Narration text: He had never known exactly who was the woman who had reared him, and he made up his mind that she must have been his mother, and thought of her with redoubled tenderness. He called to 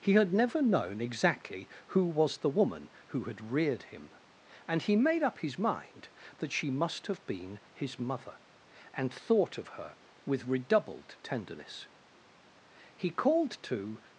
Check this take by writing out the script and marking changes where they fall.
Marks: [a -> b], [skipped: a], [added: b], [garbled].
He had never known exactly who was the woman who had reared him, and he made up his mind that she must have been his mother, and thought of her with redoubled tenderness. He called to